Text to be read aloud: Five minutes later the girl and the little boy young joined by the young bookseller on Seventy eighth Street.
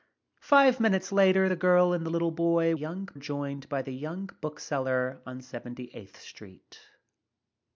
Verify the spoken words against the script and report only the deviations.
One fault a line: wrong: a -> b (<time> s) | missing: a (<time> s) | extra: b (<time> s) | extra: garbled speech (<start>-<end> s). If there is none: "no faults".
no faults